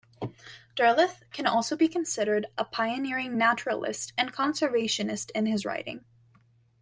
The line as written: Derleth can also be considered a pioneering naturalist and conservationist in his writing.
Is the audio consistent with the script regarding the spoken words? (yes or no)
yes